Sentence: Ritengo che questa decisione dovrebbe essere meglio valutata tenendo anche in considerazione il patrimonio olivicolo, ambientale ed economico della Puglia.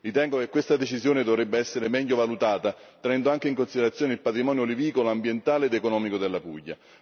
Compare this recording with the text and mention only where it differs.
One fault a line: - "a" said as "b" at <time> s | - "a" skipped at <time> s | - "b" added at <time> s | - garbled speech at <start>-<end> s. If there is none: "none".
none